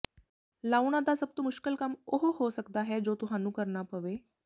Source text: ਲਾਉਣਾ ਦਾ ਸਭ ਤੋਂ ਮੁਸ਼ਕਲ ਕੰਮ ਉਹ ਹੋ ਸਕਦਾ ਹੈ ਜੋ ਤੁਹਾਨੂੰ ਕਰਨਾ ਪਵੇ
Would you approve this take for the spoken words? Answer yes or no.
yes